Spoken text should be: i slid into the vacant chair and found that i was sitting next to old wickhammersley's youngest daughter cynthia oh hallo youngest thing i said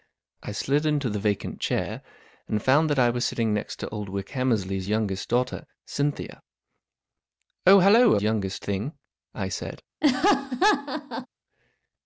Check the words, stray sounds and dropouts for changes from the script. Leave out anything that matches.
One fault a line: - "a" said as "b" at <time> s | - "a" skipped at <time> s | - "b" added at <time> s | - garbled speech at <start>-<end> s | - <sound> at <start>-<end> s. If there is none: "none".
- laugh at 10.0-11.3 s